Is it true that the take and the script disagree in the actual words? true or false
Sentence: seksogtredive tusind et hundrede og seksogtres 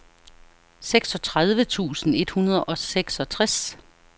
false